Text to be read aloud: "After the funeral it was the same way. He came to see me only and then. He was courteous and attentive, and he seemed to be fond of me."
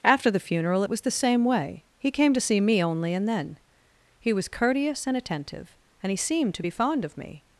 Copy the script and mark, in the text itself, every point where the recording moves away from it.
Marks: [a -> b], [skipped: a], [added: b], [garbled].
"After the funeral it was the same way. He came to see me only and then. He was courteous and attentive, and he seemed to be fond of me."